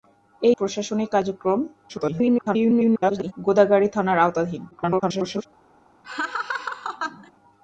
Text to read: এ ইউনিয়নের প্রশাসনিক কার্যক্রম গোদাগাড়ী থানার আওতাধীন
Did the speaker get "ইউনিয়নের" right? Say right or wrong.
wrong